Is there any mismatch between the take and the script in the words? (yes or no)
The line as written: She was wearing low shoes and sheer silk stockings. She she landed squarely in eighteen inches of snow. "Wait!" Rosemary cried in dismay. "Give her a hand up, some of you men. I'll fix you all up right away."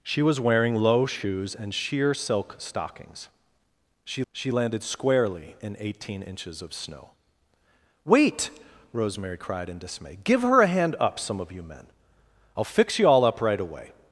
no